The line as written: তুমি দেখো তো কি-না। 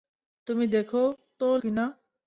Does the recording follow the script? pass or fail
pass